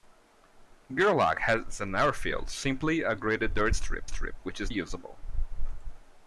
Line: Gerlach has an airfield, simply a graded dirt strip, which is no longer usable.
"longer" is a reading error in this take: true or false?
true